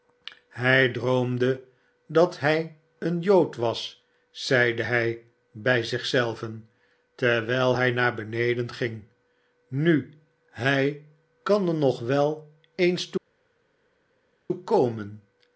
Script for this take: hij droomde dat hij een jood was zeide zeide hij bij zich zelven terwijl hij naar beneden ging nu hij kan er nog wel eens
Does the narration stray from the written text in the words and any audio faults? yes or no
yes